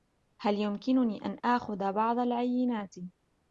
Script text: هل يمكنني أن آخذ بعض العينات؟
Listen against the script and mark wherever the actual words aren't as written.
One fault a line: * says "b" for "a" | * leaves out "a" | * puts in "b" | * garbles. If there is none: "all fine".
all fine